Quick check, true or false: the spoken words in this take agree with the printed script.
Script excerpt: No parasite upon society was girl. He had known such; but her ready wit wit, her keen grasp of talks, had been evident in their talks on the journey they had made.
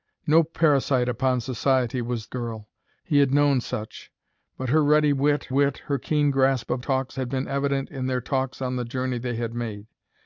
true